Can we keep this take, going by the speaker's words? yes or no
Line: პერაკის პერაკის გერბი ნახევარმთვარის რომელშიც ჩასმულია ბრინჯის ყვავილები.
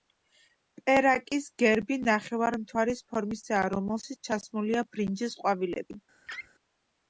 no